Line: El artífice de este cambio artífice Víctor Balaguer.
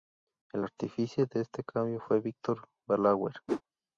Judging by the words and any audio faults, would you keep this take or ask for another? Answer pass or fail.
fail